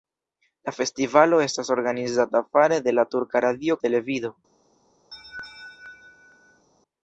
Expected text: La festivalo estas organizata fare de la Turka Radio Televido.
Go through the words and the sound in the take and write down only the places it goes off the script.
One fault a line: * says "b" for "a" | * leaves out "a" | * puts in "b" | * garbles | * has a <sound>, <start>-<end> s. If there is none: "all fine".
* has a laugh, 5.1-6.7 s